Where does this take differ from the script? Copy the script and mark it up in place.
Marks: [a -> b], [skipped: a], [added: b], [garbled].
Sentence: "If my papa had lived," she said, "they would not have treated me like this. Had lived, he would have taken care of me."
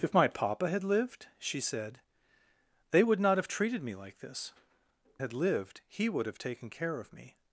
"If my papa had lived," she said, "they would not have treated me like this. Had lived, he would have taken care of me."